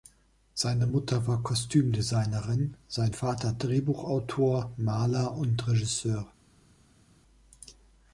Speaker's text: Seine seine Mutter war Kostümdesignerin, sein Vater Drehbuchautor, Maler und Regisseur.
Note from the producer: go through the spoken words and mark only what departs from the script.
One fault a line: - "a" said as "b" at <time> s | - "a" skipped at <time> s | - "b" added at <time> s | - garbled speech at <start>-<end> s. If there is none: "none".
- "seine" skipped at 0.9 s